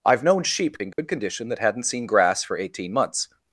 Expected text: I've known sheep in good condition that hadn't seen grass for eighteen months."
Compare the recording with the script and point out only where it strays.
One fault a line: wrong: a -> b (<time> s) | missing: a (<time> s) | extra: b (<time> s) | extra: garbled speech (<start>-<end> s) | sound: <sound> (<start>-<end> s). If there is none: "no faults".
sound: dropout (0.9-1.0 s)